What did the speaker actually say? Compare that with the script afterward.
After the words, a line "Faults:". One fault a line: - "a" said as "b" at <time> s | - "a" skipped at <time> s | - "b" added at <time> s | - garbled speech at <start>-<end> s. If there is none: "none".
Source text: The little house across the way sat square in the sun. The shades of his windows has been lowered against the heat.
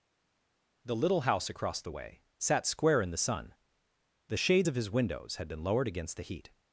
The little house across the way sat square in the sun. The shades of his windows had been lowered against the heat.
Faults:
- "has" said as "had" at 5.4 s